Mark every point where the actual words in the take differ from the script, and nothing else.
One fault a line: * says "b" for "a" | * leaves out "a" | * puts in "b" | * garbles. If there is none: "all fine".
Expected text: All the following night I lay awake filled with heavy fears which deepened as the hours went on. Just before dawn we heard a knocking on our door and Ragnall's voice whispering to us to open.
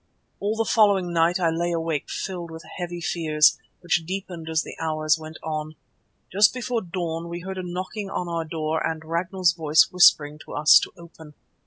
all fine